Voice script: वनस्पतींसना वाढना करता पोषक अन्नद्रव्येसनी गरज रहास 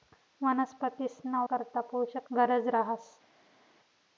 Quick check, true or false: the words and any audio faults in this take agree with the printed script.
false